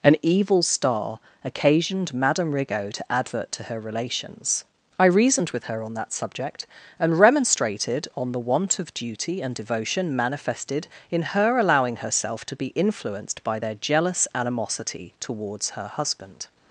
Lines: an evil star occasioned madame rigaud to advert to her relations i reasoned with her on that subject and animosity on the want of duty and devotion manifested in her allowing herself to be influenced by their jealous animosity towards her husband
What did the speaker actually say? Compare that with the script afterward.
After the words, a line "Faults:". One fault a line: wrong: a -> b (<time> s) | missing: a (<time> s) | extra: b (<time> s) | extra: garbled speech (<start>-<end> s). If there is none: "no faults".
an evil star occasioned madame rigaud to advert to her relations i reasoned with her on that subject and remonstrated on the want of duty and devotion manifested in her allowing herself to be influenced by their jealous animosity towards her husband
Faults:
wrong: animosity -> remonstrated (7.2 s)